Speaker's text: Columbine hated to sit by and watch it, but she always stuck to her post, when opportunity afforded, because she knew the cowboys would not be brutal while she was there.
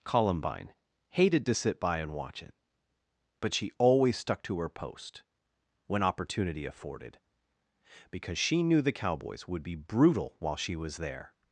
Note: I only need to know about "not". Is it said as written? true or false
false